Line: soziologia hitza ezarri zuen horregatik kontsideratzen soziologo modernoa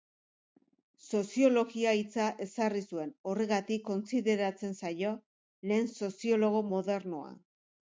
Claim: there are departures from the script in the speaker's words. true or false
true